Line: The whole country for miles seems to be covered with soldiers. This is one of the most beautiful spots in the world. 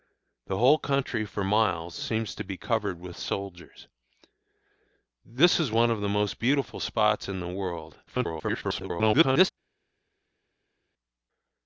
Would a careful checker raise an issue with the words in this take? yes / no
yes